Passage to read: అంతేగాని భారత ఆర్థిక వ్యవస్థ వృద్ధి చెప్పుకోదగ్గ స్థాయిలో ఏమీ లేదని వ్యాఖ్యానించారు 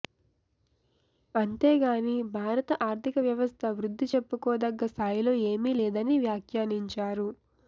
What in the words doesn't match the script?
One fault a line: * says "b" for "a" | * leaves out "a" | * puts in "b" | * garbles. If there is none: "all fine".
all fine